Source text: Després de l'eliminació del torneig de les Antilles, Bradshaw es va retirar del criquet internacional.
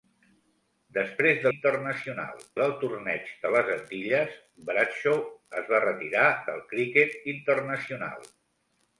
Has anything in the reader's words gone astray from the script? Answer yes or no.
yes